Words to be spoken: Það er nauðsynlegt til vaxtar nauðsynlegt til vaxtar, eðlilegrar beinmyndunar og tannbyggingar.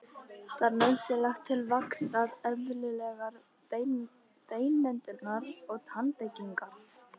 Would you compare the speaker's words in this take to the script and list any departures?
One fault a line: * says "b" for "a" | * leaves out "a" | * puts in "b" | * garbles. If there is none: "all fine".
* leaves out "nauðsynlegt til vaxtar"